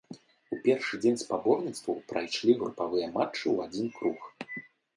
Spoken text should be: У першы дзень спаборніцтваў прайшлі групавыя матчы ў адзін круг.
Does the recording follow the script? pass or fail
pass